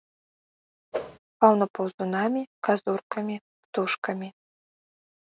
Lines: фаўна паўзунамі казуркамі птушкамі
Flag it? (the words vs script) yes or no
no